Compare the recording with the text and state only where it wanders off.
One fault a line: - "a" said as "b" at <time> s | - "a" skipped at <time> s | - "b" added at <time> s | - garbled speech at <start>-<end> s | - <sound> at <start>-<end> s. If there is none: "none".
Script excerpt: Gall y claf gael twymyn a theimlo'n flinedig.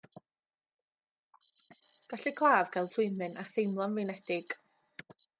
none